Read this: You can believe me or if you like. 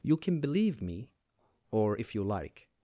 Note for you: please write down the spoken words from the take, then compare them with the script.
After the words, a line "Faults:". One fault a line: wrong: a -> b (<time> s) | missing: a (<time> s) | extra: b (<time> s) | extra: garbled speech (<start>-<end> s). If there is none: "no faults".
You can believe me or if you like.
Faults:
no faults